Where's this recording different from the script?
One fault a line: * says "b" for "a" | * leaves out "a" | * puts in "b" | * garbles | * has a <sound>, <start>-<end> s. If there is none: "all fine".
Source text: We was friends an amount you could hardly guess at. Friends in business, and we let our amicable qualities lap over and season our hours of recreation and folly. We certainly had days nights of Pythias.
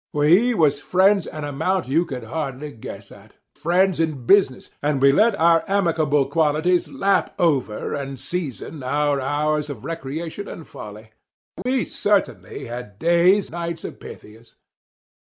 * has a dropout, 11.6-11.7 s